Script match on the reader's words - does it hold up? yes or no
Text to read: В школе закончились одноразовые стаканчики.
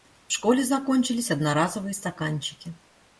yes